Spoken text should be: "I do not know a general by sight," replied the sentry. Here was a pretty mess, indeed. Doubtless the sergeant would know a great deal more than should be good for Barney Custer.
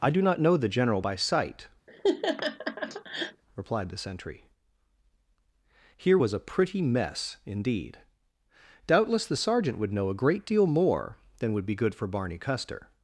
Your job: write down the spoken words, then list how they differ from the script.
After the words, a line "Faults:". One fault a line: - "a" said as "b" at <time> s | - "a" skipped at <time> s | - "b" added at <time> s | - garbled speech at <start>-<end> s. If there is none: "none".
"I do not know the general by sight," replied the sentry. Here was a pretty mess, indeed. Doubtless the sergeant would know a great deal more than would be good for Barney Custer.
Faults:
- "a" said as "the" at 0.6 s
- "should" said as "would" at 11.5 s